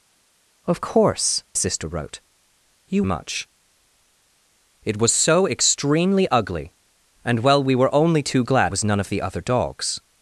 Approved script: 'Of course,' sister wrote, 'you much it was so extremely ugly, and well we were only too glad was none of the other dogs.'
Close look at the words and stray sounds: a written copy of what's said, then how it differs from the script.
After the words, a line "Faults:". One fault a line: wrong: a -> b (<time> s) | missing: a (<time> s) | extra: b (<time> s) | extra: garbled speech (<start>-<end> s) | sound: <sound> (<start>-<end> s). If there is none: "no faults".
'Of course,' sister wrote, 'you much it was so extremely ugly, and well we were only too glad was none of the other dogs.'
Faults:
no faults